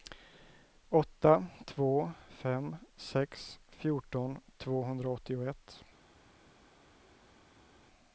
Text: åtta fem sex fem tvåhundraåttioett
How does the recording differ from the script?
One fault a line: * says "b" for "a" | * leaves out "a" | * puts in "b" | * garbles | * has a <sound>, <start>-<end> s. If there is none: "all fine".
* puts in "två"
* says "fjorton" for "fem"